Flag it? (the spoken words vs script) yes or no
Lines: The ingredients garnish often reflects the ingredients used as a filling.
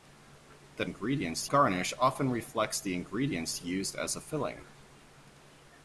no